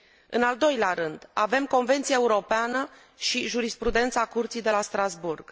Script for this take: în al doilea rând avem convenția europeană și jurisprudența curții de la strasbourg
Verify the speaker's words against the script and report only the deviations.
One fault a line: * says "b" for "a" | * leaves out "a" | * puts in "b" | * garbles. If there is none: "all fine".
all fine